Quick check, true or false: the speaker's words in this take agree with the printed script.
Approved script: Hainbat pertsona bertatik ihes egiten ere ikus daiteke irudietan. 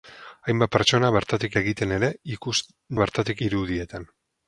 false